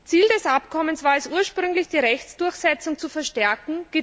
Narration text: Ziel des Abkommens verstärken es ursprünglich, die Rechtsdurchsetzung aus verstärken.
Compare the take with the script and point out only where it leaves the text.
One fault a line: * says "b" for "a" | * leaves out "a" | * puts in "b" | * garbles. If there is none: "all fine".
* says "war" for "verstärken"
* says "zu" for "aus"